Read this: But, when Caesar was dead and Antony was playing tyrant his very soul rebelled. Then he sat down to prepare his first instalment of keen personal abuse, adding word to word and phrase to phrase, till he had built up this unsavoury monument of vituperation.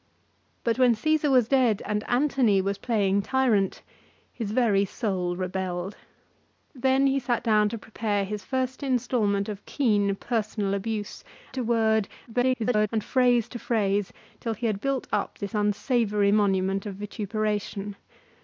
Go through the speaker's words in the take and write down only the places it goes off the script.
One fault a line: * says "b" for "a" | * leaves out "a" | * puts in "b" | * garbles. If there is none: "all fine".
* leaves out "adding word"
* garbles